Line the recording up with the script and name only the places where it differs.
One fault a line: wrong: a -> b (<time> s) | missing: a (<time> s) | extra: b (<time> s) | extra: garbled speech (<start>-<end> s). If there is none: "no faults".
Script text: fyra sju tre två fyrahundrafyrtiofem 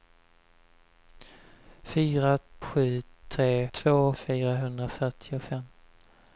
no faults